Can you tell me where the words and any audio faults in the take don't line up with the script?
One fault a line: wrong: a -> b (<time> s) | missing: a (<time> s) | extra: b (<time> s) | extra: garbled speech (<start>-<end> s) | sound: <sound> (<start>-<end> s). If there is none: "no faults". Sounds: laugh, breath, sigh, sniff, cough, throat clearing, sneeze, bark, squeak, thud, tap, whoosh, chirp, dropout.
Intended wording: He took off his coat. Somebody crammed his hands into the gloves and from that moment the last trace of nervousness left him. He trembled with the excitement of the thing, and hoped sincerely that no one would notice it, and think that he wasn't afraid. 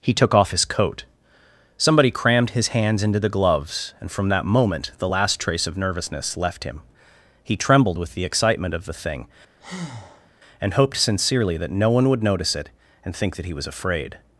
sound: breath (9.6-10.3 s)
wrong: wasn't -> was (13.5 s)